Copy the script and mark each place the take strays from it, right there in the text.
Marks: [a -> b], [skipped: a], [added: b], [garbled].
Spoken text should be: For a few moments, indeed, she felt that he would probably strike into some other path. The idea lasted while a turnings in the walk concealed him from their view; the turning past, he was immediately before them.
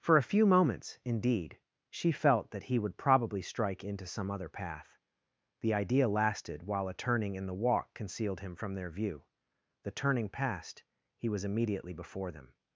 For a few moments, indeed, she felt that he would probably strike into some other path. The idea lasted while a [turnings -> turning] in the walk concealed him from their view; the turning past, he was immediately before them.